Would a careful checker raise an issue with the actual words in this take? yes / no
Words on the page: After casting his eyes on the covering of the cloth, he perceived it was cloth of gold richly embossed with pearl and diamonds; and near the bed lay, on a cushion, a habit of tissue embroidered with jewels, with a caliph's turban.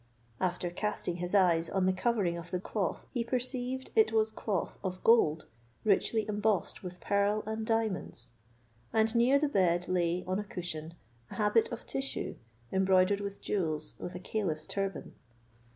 no